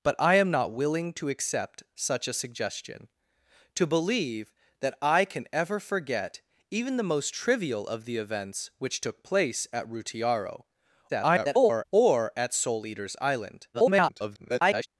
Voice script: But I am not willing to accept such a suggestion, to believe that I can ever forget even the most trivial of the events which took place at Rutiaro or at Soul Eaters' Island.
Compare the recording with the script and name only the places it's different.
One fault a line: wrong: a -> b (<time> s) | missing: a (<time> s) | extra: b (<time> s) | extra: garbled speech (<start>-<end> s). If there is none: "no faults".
extra: garbled speech (11.1-11.8 s)
extra: garbled speech (13.7-14.9 s)